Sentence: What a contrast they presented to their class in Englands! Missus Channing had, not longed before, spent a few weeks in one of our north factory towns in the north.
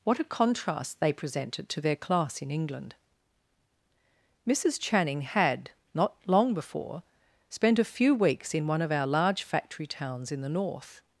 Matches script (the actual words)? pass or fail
fail